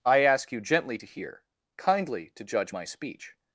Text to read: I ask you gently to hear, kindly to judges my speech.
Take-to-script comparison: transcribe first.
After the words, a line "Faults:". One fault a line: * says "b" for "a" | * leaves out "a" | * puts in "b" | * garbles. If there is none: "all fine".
I ask you gently to hear, kindly to judge my speech.
Faults:
* says "judge" for "judges"